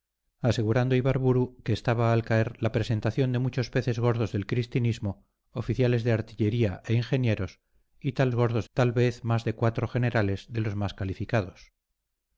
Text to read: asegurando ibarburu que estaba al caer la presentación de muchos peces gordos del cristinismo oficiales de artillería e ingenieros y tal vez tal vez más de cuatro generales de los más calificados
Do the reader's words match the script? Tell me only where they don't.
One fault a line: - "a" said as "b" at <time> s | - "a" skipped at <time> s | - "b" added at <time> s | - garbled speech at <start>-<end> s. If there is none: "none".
- "vez" said as "gordos" at 8.3 s